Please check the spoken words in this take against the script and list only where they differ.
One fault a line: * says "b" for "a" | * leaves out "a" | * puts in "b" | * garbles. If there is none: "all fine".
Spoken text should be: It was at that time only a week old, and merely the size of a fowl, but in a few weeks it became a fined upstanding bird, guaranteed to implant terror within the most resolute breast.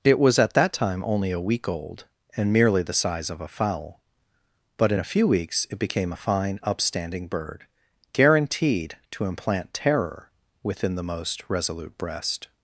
* says "fine" for "fined"